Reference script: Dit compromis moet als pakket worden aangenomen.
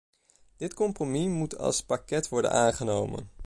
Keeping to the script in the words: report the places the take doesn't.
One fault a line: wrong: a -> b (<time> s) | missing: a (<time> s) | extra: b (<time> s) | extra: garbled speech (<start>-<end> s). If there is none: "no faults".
no faults